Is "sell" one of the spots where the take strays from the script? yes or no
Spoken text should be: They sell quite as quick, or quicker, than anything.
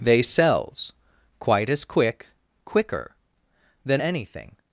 yes